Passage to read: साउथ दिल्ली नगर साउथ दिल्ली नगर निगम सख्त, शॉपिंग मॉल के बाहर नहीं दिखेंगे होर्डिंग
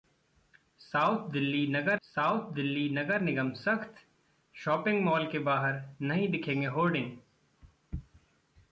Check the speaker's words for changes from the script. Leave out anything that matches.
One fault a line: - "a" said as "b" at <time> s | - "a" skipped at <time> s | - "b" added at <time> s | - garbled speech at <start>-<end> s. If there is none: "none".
none